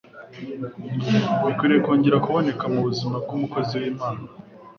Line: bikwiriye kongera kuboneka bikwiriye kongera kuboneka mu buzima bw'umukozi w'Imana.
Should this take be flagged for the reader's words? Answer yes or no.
yes